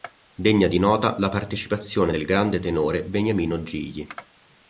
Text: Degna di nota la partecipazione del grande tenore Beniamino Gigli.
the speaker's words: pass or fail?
pass